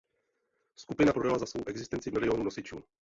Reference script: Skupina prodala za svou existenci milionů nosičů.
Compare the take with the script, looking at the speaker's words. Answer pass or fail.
pass